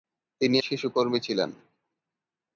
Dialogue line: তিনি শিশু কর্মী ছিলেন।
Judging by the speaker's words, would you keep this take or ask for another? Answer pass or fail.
pass